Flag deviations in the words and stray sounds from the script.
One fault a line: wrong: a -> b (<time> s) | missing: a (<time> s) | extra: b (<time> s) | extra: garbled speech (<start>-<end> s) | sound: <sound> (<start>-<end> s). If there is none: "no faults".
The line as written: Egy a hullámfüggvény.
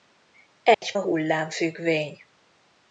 sound: dropout (0.7-0.8 s)